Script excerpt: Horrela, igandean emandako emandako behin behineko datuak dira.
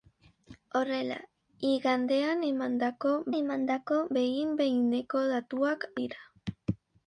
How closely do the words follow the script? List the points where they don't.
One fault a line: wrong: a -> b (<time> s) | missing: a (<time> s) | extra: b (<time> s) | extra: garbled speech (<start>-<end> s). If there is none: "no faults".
no faults